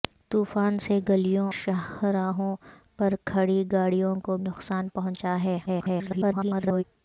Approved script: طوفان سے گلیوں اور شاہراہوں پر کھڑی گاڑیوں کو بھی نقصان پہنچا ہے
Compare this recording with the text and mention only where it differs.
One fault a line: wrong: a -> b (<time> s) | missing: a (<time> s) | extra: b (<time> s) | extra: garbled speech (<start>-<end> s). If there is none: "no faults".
missing: اور (1.5 s)
missing: بھی (4.4 s)
extra: garbled speech (5.7-6.8 s)